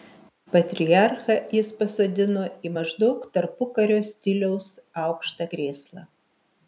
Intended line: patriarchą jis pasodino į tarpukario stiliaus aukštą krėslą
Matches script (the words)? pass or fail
fail